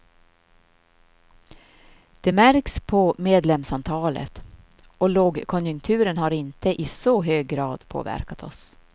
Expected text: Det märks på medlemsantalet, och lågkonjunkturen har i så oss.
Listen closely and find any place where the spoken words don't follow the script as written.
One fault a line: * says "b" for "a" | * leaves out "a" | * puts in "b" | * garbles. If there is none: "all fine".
* puts in "inte"
* puts in "hög grad påverkat"